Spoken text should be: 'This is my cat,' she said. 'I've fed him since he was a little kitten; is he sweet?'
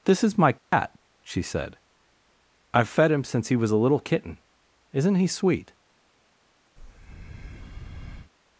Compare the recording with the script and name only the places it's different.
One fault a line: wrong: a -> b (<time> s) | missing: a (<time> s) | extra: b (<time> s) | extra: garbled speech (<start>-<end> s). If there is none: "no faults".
wrong: is -> isn't (4.9 s)